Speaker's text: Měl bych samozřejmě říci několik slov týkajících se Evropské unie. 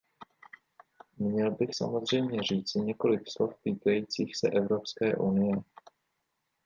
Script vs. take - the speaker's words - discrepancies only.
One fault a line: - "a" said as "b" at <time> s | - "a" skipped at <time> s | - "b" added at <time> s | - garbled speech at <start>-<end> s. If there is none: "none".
none